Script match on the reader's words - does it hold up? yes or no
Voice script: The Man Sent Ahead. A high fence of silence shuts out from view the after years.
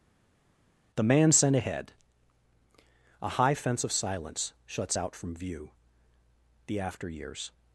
yes